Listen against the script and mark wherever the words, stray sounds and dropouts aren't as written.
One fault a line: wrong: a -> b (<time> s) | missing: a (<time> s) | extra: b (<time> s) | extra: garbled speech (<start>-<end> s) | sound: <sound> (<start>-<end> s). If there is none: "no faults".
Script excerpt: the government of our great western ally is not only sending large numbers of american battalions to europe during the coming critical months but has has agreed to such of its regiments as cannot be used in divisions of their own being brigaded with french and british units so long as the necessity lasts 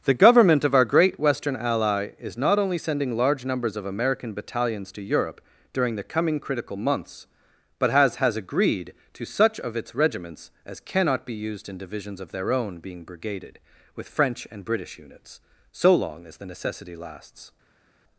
no faults